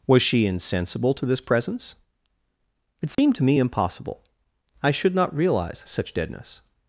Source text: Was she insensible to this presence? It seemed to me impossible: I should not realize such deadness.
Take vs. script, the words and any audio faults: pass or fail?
fail